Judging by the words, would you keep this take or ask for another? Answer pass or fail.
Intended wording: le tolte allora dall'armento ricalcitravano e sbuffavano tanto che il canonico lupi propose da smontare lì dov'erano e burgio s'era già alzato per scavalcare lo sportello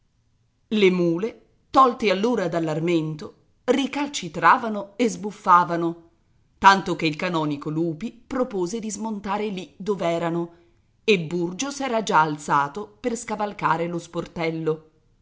fail